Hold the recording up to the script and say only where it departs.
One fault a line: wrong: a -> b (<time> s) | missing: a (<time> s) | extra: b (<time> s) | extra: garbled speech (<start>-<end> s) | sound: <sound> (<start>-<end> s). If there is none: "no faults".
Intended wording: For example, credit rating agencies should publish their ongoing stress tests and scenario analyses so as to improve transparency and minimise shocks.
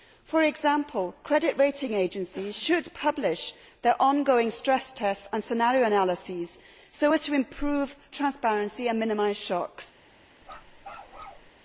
sound: bark (10.4-11.5 s)